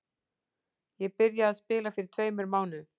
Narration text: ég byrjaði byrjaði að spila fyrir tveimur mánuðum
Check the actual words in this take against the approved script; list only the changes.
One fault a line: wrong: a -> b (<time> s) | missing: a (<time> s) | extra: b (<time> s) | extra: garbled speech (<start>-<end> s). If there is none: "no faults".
missing: byrjaði (1.5 s)